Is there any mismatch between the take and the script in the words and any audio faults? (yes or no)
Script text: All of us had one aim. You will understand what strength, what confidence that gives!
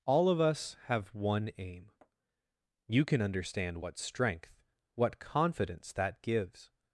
yes